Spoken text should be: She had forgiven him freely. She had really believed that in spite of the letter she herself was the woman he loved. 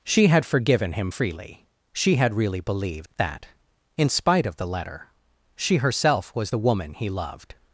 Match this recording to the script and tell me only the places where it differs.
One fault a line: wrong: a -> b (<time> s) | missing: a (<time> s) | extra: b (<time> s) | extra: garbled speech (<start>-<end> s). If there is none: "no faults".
no faults